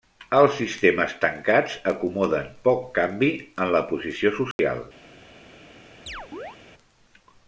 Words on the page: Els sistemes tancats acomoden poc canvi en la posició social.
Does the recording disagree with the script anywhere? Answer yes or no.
no